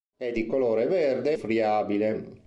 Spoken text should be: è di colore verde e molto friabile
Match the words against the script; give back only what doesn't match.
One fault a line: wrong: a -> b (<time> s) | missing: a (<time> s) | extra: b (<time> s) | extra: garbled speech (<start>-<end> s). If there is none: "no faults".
missing: molto (1.4 s)